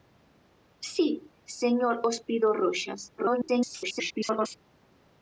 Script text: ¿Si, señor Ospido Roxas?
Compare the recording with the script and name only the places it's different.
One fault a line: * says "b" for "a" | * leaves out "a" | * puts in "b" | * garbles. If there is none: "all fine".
* garbles